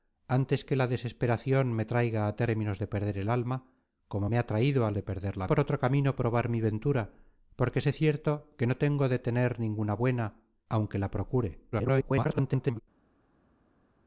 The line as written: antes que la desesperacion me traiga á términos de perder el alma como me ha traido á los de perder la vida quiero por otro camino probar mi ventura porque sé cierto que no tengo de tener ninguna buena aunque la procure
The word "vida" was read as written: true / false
false